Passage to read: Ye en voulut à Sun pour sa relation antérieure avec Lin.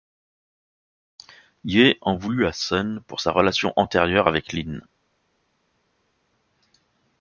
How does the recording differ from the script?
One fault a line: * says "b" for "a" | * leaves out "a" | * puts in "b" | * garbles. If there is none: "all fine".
all fine